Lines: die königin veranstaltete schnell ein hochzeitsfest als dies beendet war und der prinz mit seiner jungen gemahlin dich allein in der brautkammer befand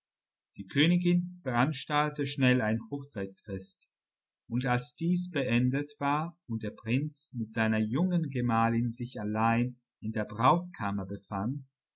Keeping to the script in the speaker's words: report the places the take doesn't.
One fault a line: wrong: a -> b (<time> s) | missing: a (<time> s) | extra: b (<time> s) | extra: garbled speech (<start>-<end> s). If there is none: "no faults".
extra: und (4.5 s)
wrong: dich -> sich (8.9 s)